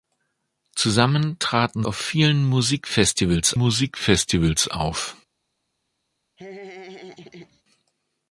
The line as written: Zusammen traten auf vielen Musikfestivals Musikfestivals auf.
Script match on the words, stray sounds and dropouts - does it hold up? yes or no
no